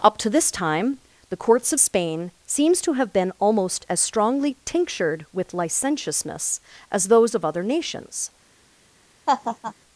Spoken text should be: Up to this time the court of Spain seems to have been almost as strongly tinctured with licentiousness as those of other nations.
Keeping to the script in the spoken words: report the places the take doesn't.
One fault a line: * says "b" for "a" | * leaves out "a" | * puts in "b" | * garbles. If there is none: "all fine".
* says "courts" for "court"